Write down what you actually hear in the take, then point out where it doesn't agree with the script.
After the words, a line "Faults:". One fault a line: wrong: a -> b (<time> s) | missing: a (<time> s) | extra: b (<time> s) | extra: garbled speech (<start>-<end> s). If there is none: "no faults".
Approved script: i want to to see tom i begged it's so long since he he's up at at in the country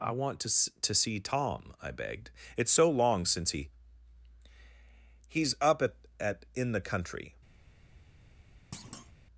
i want to to see tom i begged it's so long since he he's up at at in the country
Faults:
no faults